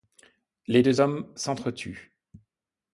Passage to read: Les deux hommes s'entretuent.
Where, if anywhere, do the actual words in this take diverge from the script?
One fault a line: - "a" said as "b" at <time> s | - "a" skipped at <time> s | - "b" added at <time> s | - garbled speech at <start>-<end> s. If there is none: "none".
none